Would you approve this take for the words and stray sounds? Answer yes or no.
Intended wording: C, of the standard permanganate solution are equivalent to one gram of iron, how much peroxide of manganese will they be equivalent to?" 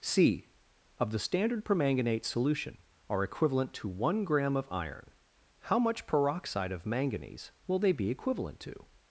yes